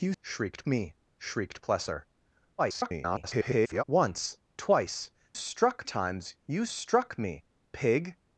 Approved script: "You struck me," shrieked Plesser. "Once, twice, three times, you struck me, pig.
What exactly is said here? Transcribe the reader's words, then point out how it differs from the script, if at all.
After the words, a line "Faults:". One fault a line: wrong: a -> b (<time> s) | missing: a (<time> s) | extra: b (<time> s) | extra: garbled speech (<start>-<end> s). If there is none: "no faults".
"You shrieked me," shrieked Plesser. [garbled] "Once, twice, struck times, you struck me, pig.
Faults:
wrong: struck -> shrieked (0.2 s)
extra: garbled speech (2.6-3.8 s)
wrong: three -> struck (5.3 s)